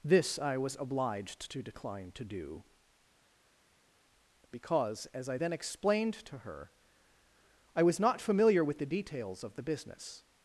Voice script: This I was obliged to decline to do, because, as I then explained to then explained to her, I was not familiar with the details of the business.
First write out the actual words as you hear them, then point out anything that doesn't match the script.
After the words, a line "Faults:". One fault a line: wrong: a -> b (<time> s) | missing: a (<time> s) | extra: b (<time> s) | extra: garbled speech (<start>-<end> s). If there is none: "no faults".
This I was obliged to decline to do, because, as I then explained to her, I was not familiar with the details of the business.
Faults:
missing: then explained to (6.4 s)